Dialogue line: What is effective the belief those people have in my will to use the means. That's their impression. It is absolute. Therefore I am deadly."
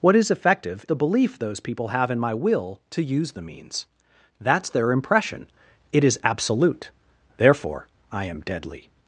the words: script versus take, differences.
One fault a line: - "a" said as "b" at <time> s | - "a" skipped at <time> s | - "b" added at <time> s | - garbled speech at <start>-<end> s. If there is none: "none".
none